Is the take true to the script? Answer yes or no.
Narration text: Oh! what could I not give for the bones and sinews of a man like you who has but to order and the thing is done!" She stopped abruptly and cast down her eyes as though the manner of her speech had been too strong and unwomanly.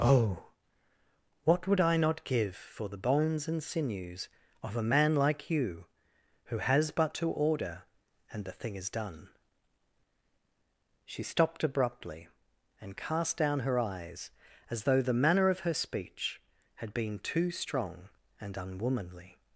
no